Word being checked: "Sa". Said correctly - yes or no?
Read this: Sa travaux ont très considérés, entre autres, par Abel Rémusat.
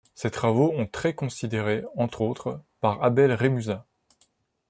no